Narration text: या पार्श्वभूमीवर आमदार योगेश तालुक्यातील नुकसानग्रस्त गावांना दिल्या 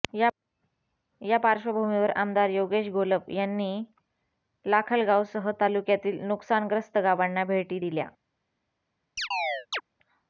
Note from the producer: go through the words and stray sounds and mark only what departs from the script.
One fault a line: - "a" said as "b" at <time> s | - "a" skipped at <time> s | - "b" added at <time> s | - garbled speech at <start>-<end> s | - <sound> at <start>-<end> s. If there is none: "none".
- "घोलप यांनी लाखलगावसह" added at 2.9 s
- "भेटी" added at 7.5 s
- chirp at 9.2-9.8 s